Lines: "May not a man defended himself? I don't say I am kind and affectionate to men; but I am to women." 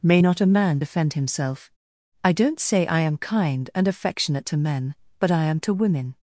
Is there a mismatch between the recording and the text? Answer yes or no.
yes